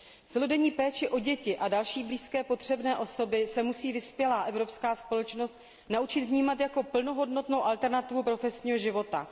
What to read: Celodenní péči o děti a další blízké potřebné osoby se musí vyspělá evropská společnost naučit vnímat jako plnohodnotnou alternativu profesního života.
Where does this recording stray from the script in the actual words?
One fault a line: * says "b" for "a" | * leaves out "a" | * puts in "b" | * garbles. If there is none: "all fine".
all fine